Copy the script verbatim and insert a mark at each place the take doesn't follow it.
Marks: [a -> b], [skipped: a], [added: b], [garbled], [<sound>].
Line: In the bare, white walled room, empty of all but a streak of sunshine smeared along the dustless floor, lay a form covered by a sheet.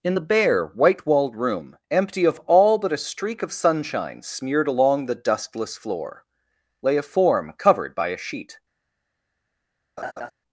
In the bare, white walled room, empty of all but a streak of sunshine smeared along the dustless floor, lay a form covered by a sheet. [laugh]